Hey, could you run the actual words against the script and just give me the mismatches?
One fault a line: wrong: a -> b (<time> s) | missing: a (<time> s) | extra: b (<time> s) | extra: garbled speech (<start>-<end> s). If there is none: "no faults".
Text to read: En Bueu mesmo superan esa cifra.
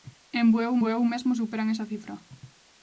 extra: Bueu (0.8 s)